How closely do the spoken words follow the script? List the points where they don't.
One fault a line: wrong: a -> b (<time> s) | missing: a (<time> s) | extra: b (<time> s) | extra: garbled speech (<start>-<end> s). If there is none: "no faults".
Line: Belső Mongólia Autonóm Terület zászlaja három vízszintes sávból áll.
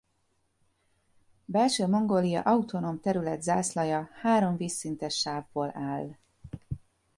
no faults